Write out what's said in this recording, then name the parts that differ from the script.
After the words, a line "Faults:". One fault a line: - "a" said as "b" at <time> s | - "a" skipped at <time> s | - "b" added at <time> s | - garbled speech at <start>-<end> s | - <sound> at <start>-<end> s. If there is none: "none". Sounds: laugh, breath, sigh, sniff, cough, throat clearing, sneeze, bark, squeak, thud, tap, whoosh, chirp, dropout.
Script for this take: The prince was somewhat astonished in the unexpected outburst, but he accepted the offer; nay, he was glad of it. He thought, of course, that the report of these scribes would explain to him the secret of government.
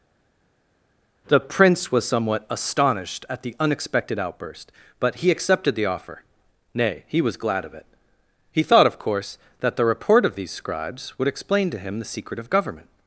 The prince was somewhat astonished at the unexpected outburst, but he accepted the offer; nay, he was glad of it. He thought, of course, that the report of these scribes would explain to him the secret of government.
Faults:
- "in" said as "at" at 3.3 s